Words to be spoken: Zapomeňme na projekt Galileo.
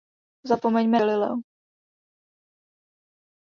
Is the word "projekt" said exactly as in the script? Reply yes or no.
no